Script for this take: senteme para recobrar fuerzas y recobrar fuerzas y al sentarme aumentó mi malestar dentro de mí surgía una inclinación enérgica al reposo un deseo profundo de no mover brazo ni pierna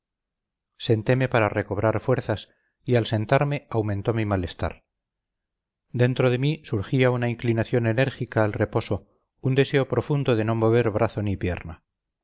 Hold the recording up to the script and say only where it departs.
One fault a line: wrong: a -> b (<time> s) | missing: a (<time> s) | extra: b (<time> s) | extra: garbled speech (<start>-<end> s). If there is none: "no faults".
missing: recobrar fuerzas y (3.0 s)